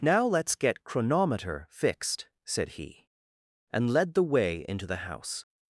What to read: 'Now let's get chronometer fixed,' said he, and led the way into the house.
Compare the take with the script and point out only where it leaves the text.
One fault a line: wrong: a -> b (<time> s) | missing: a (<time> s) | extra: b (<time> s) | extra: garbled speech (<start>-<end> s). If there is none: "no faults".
no faults